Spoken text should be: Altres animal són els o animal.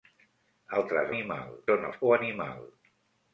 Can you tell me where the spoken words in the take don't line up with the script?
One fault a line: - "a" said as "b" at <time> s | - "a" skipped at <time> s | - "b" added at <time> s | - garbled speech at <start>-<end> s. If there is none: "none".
none